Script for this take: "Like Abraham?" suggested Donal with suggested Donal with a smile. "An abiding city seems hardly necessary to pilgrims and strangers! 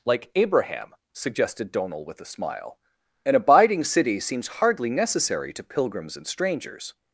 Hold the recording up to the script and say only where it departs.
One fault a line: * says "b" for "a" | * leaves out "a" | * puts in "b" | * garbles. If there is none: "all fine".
* leaves out "suggested Donal with"